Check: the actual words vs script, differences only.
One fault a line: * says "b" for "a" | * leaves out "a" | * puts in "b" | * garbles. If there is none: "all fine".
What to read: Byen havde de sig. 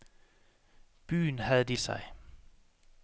all fine